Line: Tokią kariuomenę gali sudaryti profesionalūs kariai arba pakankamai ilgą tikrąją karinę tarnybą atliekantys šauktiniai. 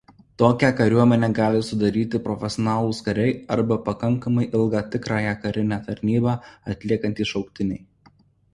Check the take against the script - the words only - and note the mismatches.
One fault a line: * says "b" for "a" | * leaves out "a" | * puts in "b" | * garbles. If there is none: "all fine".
all fine